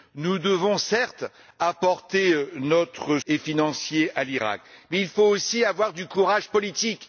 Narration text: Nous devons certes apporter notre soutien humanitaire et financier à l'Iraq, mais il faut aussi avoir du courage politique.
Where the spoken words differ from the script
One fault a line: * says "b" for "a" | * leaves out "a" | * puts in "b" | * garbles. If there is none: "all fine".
* leaves out "soutien humanitaire"